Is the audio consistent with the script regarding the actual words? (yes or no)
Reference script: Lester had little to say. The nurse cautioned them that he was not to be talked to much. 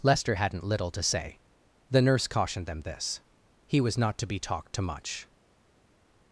no